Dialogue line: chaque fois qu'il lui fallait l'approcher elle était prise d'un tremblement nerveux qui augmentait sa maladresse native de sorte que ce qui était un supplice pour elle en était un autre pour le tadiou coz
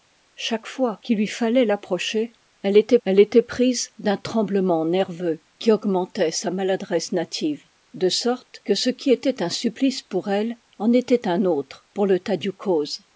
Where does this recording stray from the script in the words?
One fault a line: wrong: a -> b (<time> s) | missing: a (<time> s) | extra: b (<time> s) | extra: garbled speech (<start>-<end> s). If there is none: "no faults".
extra: elle était (3.1 s)